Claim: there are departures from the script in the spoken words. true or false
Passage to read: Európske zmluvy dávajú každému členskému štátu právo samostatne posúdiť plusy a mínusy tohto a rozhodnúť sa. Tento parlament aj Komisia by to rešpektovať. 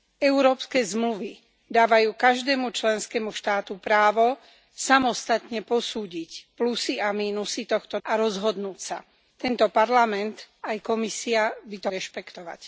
false